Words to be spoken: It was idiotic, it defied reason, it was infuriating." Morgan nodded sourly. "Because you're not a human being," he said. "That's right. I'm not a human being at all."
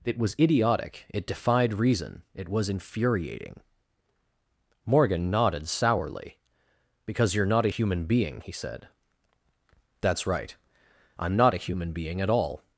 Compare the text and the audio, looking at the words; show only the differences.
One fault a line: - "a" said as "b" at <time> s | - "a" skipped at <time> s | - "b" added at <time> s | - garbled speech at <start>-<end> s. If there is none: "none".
none